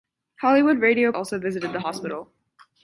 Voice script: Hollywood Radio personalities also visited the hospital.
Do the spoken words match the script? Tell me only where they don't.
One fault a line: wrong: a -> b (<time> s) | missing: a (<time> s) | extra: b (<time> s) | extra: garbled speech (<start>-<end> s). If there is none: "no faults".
missing: personalities (1.1 s)